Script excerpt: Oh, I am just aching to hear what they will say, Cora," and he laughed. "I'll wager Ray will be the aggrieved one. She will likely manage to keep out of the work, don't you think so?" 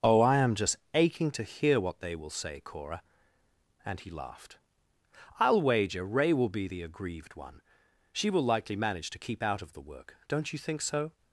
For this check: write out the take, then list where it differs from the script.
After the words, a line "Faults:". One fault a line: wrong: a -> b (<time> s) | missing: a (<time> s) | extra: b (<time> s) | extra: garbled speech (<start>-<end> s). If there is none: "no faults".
Oh, I am just aching to hear what they will say, Cora," and he laughed. "I'll wager Ray will be the aggrieved one. She will likely manage to keep out of the work, don't you think so?"
Faults:
no faults